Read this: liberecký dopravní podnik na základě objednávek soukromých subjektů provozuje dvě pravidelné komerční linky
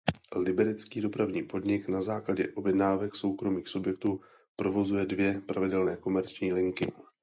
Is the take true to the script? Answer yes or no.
yes